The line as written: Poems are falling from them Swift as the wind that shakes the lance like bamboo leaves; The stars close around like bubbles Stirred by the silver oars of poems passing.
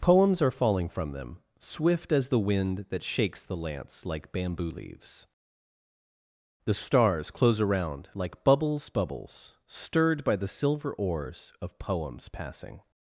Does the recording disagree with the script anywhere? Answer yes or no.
yes